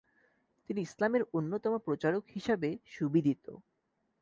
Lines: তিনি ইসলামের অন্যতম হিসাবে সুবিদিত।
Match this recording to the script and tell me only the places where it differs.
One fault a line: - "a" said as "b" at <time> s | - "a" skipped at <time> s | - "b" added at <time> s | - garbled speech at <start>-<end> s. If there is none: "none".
- "প্রচারক" added at 1.8 s